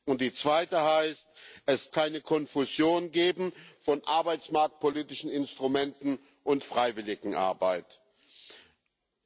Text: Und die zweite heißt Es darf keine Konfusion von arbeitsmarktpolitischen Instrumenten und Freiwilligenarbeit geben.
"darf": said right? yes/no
no